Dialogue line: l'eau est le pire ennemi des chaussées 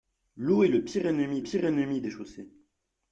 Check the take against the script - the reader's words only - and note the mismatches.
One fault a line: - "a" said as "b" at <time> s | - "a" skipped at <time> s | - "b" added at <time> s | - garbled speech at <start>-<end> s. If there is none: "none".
- "pire ennemi" added at 1.4 s